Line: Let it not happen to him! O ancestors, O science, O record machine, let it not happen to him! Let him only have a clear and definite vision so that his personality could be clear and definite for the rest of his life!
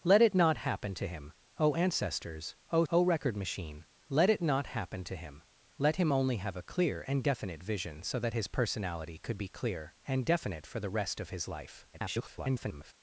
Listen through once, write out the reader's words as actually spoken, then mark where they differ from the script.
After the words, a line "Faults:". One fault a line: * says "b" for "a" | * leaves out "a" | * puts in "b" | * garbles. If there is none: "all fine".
Let it not happen to him! O ancestors, O O record machine, let it not happen to him! Let him only have a clear and definite vision so that his personality could be clear and definite for the rest of his life! [garbled]
Faults:
* leaves out "science"
* garbles